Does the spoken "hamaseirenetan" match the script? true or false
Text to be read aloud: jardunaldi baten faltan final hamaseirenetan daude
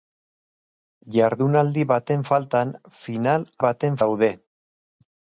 false